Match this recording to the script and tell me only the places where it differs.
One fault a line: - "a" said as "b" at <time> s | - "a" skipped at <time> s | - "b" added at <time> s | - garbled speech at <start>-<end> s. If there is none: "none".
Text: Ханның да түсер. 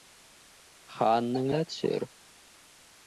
none